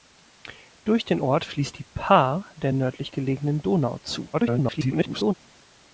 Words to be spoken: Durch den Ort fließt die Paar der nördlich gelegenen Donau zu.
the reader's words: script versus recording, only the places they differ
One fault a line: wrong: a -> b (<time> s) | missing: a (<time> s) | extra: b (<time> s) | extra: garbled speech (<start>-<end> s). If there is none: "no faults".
extra: garbled speech (4.3-5.3 s)